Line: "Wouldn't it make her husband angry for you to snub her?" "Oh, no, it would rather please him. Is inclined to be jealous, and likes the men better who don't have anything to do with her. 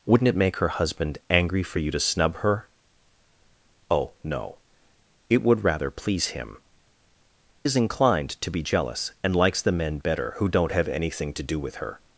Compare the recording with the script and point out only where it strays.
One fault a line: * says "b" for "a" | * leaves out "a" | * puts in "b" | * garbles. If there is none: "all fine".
all fine